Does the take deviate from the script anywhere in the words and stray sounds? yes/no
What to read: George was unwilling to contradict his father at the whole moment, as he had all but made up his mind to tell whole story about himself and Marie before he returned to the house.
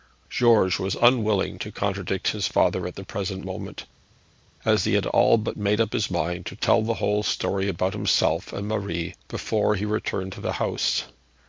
yes